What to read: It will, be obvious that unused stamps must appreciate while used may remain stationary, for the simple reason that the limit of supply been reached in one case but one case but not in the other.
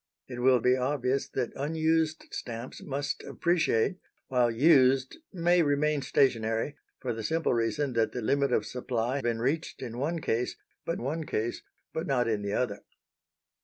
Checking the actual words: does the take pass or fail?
pass